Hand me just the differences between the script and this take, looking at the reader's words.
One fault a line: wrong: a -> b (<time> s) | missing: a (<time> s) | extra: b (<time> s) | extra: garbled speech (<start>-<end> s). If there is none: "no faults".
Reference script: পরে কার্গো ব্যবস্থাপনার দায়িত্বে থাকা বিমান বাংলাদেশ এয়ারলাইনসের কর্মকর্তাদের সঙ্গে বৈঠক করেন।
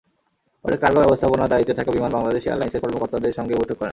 no faults